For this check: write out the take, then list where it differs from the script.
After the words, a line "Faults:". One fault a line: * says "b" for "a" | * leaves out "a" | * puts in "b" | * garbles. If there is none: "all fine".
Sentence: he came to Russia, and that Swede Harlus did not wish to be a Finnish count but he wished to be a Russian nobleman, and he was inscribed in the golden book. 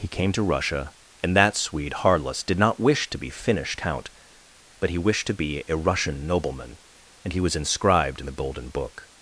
he came to Russia, and that Swede Harlus did not wish to be Finnish count but he wished to be a Russian nobleman, and he was inscribed in the golden book.
Faults:
* leaves out "a"